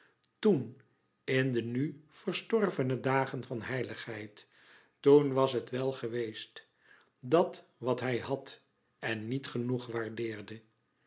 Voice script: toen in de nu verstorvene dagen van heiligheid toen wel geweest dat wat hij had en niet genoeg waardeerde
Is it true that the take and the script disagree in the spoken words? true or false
true